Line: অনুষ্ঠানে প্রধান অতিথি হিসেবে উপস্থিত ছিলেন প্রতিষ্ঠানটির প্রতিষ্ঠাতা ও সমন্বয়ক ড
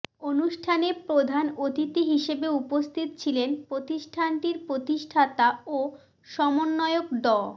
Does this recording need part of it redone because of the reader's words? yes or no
no